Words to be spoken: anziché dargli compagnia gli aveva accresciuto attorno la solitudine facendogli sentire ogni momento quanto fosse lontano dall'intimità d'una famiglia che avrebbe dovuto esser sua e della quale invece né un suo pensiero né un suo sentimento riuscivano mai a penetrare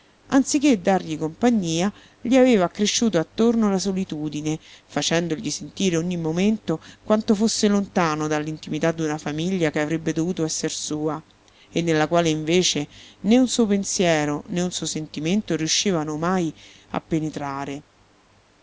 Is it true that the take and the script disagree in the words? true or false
true